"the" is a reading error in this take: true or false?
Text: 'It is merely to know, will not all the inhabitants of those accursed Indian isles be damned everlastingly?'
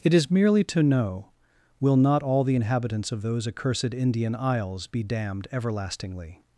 false